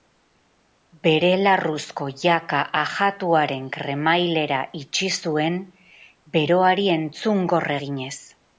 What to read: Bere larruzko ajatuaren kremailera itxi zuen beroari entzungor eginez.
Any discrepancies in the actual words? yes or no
yes